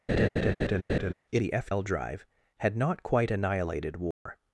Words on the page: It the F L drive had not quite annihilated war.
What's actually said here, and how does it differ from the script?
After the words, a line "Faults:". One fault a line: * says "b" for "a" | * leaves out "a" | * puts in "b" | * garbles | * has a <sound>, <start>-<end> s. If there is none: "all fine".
It the F L drive had not quite annihilated war.
Faults:
* has a laugh, 0.1-1.1 s
* has a dropout, 4.1-4.3 s